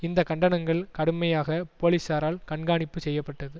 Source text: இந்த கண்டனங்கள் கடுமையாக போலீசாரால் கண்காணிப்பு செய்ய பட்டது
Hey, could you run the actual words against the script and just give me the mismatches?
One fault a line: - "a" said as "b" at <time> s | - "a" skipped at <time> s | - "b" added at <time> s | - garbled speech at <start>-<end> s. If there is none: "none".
none